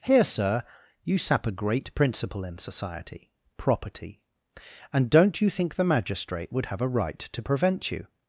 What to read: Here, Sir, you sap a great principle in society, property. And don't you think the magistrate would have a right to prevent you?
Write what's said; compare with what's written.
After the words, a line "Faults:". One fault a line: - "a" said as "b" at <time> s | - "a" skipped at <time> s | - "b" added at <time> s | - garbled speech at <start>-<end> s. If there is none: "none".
Here, Sir, you sap a great principle in society, property. And don't you think the magistrate would have a right to prevent you?
Faults:
none